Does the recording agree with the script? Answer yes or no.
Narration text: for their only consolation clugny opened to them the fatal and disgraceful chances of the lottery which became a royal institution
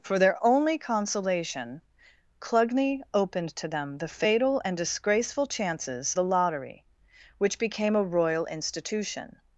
no